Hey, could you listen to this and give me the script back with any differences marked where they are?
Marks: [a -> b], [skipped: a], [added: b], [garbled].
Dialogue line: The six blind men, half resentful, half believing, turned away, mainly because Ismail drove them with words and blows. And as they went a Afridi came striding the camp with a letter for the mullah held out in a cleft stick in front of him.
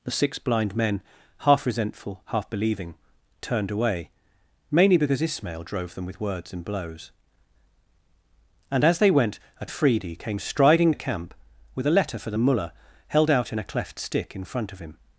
The six blind men, half resentful, half believing, turned away, mainly because Ismail drove them with words and blows. And as they went a Afridi came striding the camp with a letter for the mullah held out in a cleft stick in front of him.